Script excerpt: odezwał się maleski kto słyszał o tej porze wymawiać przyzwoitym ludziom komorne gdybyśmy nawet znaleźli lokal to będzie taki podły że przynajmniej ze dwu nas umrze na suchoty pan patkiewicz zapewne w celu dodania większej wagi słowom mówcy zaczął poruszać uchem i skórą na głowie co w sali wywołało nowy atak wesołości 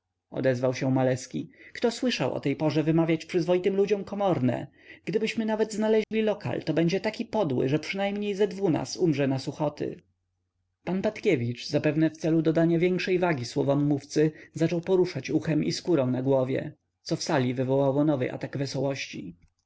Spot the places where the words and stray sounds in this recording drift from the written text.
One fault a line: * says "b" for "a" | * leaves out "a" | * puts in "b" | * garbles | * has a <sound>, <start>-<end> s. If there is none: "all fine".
* has a dropout, 6.0-6.1 s